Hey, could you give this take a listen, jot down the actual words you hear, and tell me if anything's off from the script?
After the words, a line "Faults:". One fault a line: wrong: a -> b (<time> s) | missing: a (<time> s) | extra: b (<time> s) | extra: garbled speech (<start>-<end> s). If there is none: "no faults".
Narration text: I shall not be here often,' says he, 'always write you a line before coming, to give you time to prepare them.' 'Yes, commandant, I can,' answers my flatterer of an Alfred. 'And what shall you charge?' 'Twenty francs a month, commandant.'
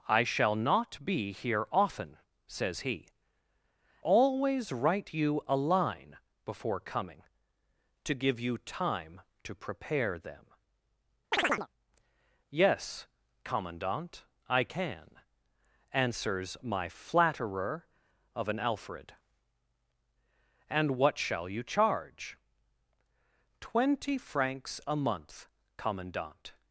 I shall not be here often,' says he, 'always write you a line before coming, to give you time to prepare them.' 'Yes, commandant, I can,' answers my flatterer of an Alfred. 'And what shall you charge?' 'Twenty francs a month, commandant.'
Faults:
no faults